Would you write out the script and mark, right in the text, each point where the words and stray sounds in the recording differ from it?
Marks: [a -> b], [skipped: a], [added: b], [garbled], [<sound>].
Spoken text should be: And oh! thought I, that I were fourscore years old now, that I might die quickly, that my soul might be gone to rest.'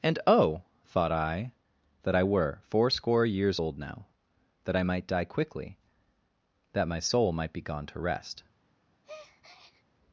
And oh! thought I, that I were fourscore years old now, that I might die quickly, that my soul might be gone to rest.' [breath]